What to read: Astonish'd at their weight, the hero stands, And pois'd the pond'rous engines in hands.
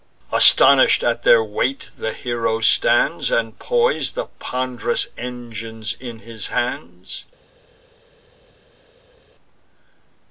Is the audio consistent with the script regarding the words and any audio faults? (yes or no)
no